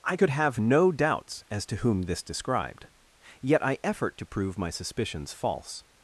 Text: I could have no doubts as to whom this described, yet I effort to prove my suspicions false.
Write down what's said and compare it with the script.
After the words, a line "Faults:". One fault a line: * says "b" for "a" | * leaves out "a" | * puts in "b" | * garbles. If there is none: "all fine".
I could have no doubts as to whom this described, yet I effort to prove my suspicions false.
Faults:
all fine